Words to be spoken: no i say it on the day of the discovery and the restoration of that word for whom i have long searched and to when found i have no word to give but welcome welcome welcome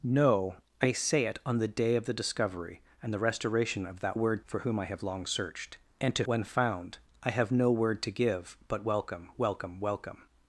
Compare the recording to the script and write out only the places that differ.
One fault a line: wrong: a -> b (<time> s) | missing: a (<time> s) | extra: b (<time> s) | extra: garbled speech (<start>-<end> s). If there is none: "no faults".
no faults